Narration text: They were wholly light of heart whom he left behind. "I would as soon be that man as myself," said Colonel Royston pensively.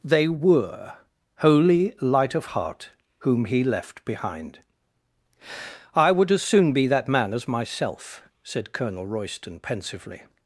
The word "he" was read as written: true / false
true